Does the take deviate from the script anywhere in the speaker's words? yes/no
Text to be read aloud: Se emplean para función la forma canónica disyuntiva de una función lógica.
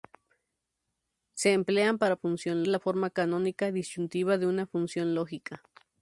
no